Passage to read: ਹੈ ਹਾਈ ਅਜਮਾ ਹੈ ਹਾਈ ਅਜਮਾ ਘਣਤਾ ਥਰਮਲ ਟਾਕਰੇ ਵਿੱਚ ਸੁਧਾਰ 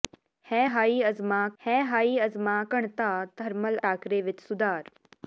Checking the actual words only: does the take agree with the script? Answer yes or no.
yes